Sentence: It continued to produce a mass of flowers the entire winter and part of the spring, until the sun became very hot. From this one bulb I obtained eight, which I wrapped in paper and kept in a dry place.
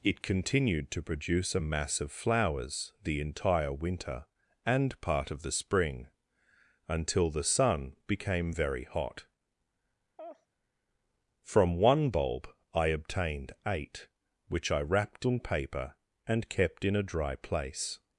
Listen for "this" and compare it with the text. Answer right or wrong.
wrong